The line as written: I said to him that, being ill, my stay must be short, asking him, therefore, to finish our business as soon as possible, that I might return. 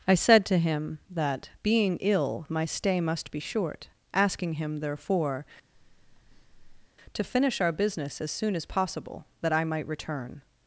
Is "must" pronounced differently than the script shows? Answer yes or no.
no